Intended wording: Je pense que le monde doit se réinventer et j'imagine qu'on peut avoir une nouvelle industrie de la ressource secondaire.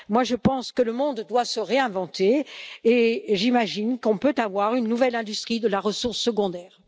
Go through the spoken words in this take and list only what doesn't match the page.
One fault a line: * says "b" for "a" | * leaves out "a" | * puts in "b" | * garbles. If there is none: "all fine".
all fine